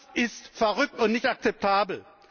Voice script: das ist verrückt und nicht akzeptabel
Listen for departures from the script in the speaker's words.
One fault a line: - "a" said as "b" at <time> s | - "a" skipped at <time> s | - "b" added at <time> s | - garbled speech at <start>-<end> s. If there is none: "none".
none